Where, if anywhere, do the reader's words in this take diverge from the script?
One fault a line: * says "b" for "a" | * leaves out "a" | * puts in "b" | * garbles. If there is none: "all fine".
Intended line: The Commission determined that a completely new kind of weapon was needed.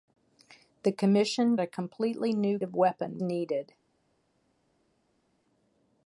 * leaves out "determined that"
* leaves out "kind"
* leaves out "was"